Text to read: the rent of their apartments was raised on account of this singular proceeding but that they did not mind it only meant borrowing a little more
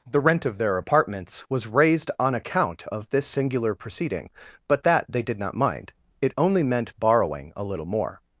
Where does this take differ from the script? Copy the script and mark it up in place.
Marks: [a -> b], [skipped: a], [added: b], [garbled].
the rent of their apartments was raised on account of this singular proceeding but that they did not mind it only meant borrowing a little more